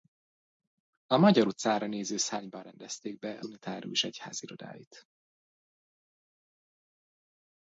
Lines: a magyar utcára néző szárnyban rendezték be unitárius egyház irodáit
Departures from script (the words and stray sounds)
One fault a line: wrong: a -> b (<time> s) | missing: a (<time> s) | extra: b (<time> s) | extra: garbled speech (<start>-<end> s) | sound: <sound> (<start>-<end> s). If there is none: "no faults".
no faults